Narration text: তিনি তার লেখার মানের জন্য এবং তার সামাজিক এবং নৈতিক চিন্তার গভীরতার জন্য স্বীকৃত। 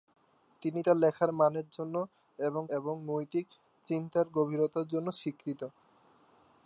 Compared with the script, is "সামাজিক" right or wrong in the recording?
wrong